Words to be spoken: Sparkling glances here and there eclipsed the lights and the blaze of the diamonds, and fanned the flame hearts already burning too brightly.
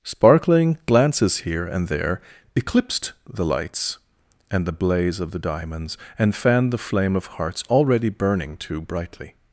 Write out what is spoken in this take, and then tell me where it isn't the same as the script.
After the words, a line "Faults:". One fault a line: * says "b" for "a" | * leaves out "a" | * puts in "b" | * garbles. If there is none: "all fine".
Sparkling glances here and there eclipsed the lights and the blaze of the diamonds, and fanned the flame of hearts already burning too brightly.
Faults:
* puts in "of"